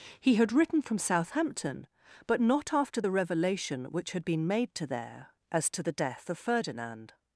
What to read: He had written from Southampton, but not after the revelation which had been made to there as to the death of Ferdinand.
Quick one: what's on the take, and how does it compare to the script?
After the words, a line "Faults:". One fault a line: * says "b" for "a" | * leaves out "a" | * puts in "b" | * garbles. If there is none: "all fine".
He had written from Southampton, but not after the revelation which had been made to there as to the death of Ferdinand.
Faults:
all fine